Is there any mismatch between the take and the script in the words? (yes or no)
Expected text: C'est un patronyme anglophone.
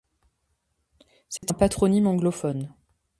no